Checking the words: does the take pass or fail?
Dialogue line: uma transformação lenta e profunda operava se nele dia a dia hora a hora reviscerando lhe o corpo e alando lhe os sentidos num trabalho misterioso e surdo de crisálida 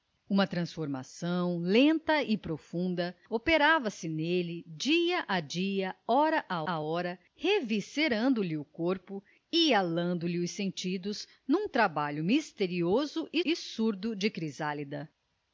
fail